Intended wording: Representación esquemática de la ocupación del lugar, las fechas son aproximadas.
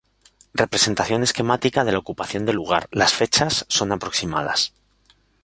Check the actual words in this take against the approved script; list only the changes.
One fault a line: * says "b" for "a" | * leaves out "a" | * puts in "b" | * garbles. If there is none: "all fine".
all fine